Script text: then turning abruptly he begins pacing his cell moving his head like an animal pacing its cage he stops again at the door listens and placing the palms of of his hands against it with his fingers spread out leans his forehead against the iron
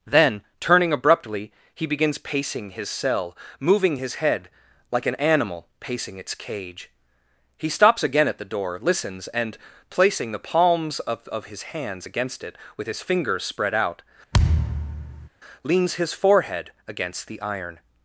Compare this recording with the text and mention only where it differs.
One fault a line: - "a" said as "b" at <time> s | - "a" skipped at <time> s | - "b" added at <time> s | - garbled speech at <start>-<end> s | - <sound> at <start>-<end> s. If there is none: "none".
- thud at 14.3-15.3 s